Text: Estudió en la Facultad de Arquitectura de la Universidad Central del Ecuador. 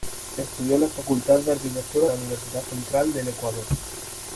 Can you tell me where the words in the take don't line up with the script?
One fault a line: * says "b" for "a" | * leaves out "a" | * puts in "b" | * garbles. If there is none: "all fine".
* leaves out "de"